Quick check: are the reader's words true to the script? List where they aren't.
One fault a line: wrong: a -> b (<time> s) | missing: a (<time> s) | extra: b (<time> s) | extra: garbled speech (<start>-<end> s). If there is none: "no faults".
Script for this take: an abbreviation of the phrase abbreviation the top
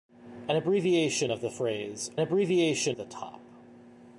no faults